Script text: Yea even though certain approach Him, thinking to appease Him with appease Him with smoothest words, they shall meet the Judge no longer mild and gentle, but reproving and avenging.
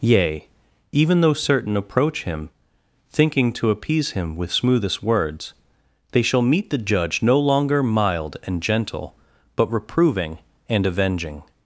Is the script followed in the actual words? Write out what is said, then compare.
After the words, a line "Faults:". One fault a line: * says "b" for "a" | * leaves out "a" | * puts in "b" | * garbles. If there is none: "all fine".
Yea even though certain approach Him, thinking to appease Him with smoothest words, they shall meet the Judge no longer mild and gentle, but reproving and avenging.
Faults:
* leaves out "appease Him with"